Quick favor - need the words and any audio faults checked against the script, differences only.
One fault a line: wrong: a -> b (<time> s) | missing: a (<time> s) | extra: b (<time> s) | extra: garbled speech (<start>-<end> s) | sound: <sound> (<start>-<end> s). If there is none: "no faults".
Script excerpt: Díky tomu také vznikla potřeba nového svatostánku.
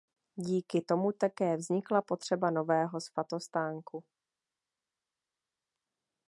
no faults